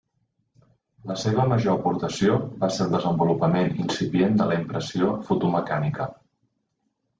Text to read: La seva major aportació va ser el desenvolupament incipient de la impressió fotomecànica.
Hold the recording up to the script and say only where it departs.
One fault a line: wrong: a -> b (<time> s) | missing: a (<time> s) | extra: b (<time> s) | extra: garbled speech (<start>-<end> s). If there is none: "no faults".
no faults